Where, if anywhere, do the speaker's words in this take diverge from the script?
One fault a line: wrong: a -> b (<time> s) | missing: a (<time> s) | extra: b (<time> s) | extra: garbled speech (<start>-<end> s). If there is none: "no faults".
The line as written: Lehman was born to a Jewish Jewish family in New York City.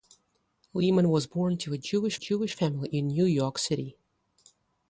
no faults